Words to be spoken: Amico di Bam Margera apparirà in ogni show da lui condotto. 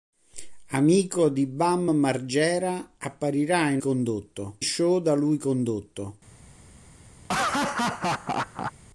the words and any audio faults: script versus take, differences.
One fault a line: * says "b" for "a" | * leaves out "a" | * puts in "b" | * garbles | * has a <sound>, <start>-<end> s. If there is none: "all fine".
* says "condotto" for "ogni"
* has a laugh, 7.2-8.7 s